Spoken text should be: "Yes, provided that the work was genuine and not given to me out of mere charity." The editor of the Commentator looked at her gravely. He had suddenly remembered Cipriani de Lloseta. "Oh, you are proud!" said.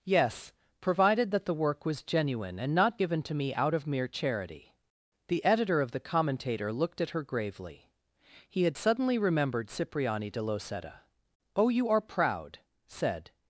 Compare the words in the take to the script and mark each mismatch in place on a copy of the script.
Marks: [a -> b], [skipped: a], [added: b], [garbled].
"Yes, provided that the work was genuine and not given to me out of mere charity." The editor of the Commentator looked at her gravely. He had suddenly remembered Cipriani de Lloseta. "Oh, you are proud!" said.